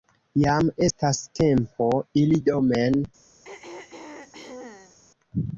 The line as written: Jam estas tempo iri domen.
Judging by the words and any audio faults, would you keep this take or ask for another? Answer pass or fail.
fail